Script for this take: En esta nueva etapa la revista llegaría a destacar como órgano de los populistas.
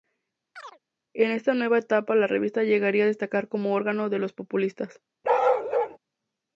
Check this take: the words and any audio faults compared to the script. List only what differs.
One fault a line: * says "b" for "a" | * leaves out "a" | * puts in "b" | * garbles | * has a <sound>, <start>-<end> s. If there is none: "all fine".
* has a chirp, 0.6-0.8 s
* has a bark, 5.2-6.0 s